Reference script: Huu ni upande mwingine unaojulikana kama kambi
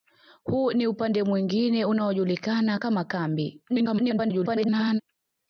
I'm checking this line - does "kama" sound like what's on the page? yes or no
yes